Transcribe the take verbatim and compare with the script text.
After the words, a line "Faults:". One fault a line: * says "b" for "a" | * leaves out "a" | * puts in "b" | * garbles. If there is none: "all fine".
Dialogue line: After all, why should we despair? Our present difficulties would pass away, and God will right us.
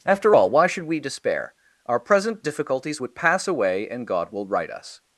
After all, why should we despair? Our present difficulties would pass away, and God will right us.
Faults:
all fine